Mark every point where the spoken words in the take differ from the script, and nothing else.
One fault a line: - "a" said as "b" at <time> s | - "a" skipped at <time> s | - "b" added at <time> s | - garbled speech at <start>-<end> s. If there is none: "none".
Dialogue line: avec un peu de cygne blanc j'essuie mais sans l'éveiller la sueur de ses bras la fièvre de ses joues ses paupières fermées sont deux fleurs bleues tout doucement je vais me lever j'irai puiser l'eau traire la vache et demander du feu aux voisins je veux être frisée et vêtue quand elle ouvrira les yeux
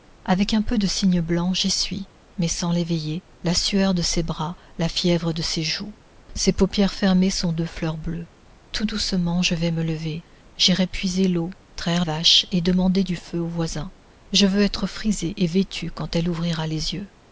- "la" skipped at 12.1 s